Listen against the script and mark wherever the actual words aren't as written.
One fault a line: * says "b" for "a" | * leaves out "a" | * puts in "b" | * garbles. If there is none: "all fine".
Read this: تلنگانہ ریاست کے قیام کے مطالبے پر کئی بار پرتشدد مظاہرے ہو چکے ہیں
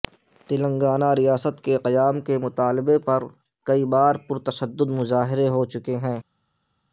all fine